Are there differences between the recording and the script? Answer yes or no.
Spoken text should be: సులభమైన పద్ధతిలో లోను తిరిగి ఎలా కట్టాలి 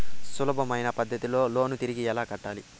no